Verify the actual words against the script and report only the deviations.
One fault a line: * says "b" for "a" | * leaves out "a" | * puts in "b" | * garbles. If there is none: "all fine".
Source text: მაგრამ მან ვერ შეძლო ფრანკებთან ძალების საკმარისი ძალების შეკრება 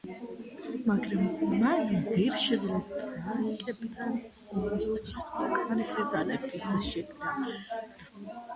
* says "ომისთვის" for "ძალების"